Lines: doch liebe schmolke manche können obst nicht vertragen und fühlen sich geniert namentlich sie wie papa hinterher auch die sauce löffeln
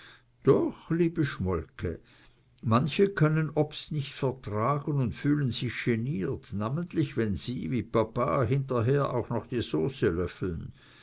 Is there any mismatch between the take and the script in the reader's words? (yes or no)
yes